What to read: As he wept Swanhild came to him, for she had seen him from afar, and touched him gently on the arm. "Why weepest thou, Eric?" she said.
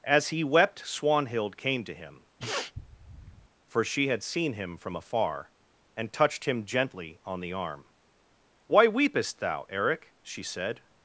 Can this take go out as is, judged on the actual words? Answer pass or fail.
pass